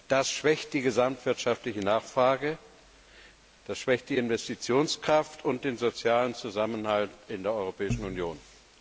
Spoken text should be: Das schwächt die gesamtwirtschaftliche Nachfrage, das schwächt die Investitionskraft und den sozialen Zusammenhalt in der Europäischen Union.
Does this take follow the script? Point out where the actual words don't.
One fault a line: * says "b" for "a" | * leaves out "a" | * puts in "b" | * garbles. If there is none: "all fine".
all fine